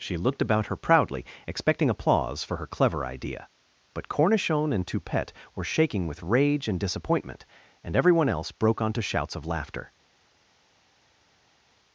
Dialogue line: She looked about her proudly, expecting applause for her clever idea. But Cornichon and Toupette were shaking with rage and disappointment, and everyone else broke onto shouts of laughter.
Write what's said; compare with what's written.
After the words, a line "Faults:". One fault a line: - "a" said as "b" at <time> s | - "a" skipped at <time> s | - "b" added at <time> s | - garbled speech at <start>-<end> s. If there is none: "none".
She looked about her proudly, expecting applause for her clever idea. But Cornichon and Toupette were shaking with rage and disappointment, and everyone else broke onto shouts of laughter.
Faults:
none